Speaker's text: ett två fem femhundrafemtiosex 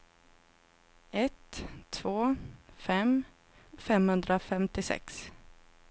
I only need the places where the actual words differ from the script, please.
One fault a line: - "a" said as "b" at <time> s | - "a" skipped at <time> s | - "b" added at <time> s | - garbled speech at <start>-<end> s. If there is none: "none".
none